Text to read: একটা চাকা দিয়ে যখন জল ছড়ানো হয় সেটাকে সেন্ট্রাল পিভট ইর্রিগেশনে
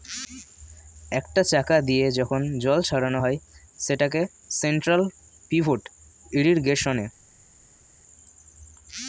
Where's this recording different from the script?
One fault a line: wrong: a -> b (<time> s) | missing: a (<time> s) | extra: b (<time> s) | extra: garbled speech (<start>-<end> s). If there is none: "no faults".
no faults